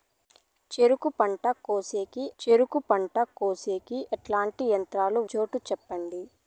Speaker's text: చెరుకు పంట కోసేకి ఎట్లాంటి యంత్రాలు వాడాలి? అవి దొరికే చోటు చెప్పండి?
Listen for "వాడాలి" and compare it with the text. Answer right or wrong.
wrong